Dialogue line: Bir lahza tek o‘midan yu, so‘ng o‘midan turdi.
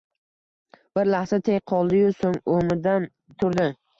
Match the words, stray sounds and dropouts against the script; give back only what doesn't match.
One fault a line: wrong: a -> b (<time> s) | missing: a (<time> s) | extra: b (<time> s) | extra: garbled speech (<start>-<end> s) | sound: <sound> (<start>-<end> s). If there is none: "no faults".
wrong: o‘midan -> qoldi (1.7 s)